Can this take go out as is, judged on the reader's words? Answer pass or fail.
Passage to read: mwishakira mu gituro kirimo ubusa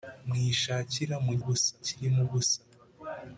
fail